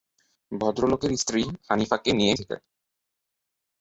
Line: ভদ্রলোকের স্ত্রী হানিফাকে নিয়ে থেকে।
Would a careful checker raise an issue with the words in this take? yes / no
no